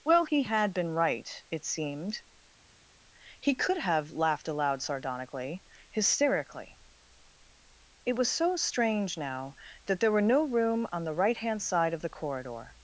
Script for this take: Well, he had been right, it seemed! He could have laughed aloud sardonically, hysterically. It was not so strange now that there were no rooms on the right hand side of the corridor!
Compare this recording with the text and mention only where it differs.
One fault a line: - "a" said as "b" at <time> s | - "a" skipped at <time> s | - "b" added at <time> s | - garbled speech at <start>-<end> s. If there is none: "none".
- "not" skipped at 8.3 s
- "rooms" said as "room" at 10.4 s